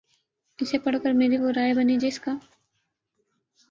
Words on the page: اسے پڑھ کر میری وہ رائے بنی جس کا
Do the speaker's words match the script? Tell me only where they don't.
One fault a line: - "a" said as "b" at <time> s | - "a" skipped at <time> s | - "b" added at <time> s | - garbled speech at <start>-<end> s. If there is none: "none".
none